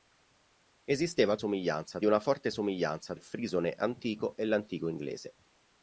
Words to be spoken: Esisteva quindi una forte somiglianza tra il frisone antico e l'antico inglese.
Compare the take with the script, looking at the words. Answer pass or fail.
fail